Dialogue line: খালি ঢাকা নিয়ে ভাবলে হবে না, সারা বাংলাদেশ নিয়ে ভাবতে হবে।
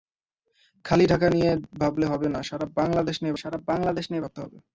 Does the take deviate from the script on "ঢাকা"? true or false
false